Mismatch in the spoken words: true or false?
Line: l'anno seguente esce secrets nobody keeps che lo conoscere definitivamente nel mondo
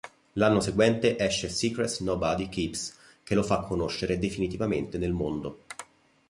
true